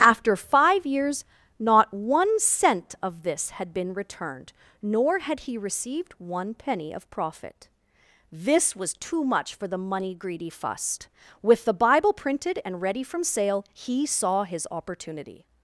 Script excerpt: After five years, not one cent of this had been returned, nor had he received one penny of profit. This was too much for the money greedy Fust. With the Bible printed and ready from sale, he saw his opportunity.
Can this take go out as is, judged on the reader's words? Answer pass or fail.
pass